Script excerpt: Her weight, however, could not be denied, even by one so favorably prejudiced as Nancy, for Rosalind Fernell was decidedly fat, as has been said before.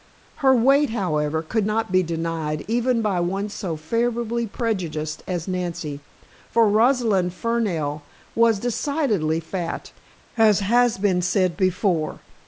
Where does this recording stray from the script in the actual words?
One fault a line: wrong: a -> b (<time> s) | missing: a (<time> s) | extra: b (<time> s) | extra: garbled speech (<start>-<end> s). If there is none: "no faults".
no faults